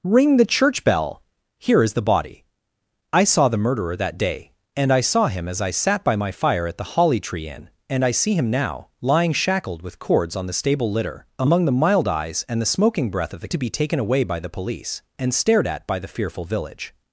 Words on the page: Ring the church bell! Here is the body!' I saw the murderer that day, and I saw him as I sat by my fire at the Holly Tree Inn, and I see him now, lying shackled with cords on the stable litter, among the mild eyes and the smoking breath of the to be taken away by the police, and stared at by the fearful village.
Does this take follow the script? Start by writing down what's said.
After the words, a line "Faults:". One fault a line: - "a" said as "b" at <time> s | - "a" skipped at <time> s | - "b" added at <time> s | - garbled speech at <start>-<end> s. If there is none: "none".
Ring the church bell! Here is the body!' I saw the murderer that day, and I saw him as I sat by my fire at the Holly Tree Inn, and I see him now, lying shackled with cords on the stable litter, among the mild eyes and the smoking breath of the to be taken away by the police, and stared at by the fearful village.
Faults:
none